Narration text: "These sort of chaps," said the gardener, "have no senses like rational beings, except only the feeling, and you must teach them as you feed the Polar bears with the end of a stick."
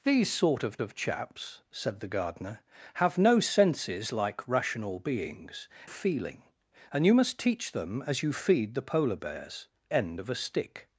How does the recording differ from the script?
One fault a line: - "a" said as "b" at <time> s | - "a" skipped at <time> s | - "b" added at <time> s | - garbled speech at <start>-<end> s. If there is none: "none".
- "of" added at 0.8 s
- "except only the" skipped at 5.7 s
- "with the" skipped at 9.7 s